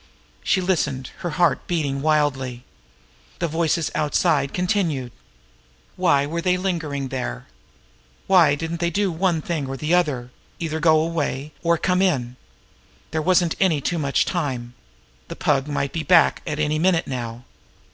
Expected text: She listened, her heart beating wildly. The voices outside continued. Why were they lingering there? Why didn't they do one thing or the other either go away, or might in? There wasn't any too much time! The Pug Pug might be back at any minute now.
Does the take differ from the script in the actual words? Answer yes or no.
yes